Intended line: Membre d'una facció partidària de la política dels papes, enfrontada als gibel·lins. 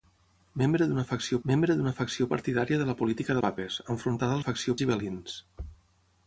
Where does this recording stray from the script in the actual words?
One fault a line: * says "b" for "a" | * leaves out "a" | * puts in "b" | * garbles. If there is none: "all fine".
* puts in "membre d'una facció"
* leaves out "dels"
* says "facció" for "als"